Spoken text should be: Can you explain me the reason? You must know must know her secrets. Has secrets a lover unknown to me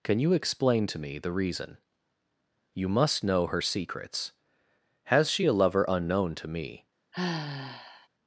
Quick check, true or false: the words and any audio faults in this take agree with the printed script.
false